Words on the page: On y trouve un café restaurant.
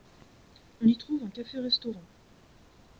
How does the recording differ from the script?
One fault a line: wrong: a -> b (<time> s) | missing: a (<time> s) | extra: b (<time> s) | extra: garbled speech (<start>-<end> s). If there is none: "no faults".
no faults